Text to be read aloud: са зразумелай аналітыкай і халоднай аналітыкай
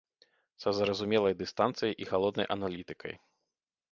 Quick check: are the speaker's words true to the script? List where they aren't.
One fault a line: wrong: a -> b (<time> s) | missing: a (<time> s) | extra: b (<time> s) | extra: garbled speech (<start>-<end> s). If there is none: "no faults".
wrong: аналітыкай -> дыстанцыяй (1.4 s)